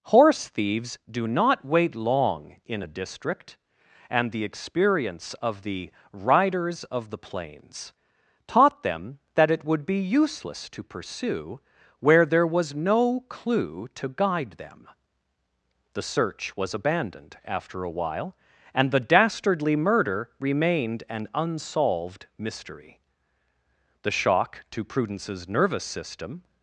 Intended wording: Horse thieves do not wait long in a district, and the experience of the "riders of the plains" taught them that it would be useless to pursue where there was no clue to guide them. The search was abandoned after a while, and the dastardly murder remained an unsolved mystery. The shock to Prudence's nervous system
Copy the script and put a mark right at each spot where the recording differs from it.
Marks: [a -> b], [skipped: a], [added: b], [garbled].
Horse thieves do not wait long in a district, and the experience of the "riders of the plains" taught them that it would be useless to pursue where there was no clue to guide them. The search was abandoned after a while, and the dastardly murder remained an unsolved mystery. The shock to Prudence's nervous system